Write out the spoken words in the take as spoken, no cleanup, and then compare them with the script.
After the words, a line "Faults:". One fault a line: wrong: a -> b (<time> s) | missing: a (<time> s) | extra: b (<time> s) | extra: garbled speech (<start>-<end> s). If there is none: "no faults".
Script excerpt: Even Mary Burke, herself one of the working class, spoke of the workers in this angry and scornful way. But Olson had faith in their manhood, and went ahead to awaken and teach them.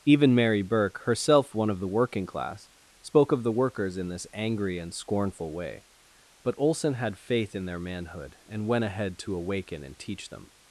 Even Mary Burke, herself one of the working class, spoke of the workers in this angry and scornful way. But Olson had faith in their manhood, and went ahead to awaken and teach them.
Faults:
no faults